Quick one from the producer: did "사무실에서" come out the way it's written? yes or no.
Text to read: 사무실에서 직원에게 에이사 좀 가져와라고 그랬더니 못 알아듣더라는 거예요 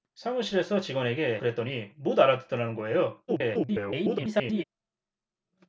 yes